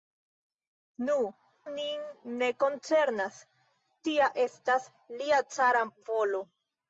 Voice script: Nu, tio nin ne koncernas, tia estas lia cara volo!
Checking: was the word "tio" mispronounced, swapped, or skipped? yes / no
yes